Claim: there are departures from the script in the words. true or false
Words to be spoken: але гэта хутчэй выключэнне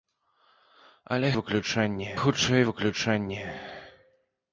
true